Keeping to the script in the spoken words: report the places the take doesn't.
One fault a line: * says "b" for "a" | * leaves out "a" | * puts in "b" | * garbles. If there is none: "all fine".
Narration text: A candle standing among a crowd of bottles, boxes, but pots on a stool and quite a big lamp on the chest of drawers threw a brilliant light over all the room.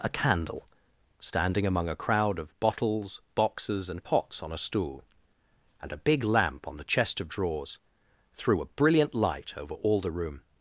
* says "and" for "but"
* leaves out "quite"